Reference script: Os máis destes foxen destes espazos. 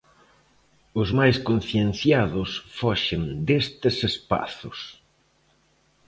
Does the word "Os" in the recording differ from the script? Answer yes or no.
no